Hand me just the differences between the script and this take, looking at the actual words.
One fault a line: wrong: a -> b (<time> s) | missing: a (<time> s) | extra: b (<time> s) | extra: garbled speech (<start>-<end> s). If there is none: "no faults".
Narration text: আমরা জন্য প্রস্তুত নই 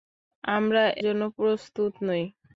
no faults